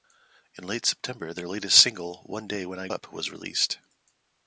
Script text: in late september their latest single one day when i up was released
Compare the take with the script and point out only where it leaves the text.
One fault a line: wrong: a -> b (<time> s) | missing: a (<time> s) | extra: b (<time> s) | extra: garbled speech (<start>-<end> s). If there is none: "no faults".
no faults